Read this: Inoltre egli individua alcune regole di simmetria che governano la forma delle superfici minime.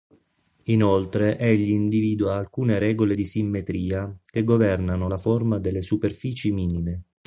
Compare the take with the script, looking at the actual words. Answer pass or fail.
pass